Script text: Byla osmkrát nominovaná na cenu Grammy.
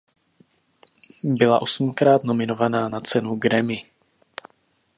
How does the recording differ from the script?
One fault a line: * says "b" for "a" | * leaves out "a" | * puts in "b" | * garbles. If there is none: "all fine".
all fine